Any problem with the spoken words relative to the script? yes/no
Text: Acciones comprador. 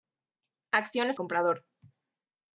no